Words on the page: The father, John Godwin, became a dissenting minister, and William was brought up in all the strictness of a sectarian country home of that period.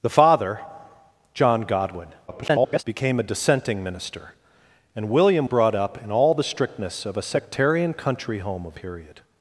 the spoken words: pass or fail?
fail